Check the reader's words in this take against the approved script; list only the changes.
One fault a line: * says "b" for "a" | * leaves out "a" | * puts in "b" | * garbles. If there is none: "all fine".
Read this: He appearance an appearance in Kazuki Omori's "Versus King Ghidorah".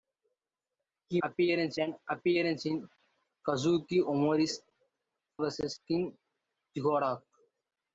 all fine